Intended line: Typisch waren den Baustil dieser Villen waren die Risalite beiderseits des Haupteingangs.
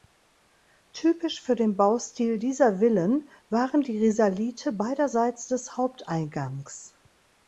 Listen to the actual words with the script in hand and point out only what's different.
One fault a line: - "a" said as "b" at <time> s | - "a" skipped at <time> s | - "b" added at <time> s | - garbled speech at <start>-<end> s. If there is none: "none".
- "waren" said as "für" at 1.4 s